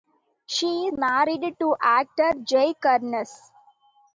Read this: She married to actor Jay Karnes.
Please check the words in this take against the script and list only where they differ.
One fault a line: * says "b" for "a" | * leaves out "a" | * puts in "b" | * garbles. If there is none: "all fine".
all fine